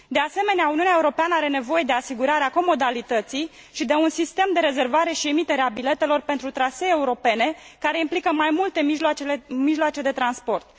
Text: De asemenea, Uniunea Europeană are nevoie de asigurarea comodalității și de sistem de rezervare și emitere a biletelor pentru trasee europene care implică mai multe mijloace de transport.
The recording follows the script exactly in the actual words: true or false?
false